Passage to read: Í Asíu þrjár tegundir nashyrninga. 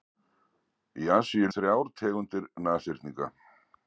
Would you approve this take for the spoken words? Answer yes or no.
yes